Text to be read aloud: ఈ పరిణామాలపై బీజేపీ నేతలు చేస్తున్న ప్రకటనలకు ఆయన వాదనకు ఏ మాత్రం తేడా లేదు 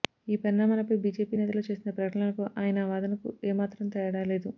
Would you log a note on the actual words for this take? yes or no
no